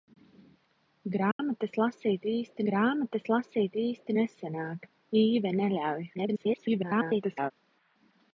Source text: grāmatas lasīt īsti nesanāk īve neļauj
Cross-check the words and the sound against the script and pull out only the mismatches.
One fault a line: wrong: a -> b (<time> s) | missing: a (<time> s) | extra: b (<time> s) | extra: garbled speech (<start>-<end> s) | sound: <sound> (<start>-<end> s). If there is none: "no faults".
sound: dropout (1.3-1.4 s)
extra: grāmatas lasīt īsti (2.7 s)
extra: garbled speech (6.1-7.5 s)